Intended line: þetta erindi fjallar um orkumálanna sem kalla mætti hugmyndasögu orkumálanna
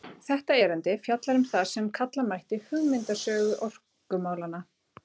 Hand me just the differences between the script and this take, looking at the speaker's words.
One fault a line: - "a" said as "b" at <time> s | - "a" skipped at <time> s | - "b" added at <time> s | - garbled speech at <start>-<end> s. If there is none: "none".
- "orkumálanna" said as "það" at 1.5 s